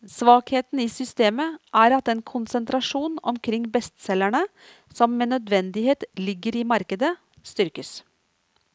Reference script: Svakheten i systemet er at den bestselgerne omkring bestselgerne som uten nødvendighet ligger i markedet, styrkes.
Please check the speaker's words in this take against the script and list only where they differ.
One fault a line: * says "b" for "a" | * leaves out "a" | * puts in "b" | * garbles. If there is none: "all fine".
* says "konsentrasjon" for "bestselgerne"
* says "med" for "uten"